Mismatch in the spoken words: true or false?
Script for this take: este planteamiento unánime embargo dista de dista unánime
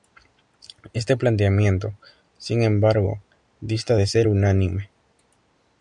true